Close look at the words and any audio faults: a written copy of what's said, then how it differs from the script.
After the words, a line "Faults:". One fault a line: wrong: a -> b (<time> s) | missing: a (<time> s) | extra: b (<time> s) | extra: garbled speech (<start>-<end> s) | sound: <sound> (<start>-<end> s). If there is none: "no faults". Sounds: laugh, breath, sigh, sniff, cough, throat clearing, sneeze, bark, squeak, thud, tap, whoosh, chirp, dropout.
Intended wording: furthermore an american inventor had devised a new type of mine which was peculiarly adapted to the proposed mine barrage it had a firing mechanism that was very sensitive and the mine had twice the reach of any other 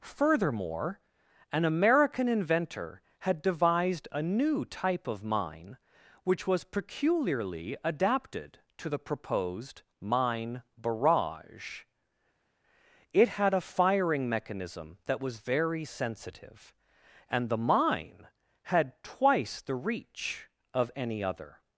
furthermore an american inventor had devised a new type of mine which was peculiarly adapted to the proposed mine barrage it had a firing mechanism that was very sensitive and the mine had twice the reach of any other
Faults:
no faults